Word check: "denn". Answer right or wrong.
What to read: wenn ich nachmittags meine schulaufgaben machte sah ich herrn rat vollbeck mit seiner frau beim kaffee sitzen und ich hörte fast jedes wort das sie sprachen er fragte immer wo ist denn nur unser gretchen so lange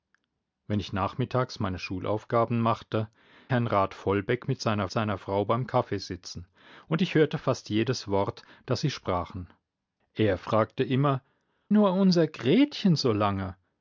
wrong